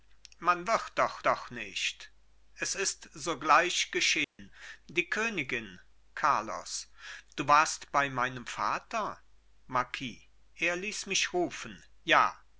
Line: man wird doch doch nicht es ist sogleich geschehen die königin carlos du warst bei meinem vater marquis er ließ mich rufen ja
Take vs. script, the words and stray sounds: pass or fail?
fail